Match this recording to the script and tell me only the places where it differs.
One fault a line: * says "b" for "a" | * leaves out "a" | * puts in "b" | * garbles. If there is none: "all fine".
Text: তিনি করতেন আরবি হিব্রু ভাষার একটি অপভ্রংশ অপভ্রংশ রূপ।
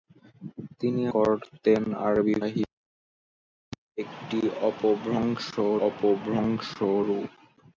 all fine